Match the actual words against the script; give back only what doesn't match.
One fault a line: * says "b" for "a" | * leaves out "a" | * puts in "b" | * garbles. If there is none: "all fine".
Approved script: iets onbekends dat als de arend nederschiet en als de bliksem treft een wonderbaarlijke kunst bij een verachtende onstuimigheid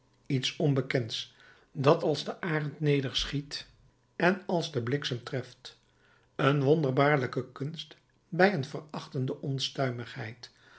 all fine